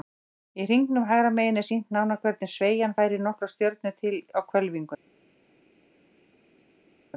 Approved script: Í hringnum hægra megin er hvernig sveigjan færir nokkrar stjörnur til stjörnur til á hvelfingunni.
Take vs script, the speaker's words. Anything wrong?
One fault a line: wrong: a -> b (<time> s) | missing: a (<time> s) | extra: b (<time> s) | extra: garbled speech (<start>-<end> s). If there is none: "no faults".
extra: sýnt nánar (1.7 s)
missing: stjörnur til (4.2 s)